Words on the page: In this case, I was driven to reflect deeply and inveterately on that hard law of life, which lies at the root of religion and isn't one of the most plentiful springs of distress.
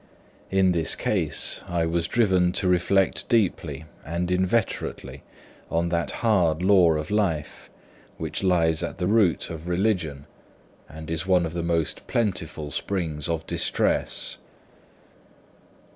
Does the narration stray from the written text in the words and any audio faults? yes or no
yes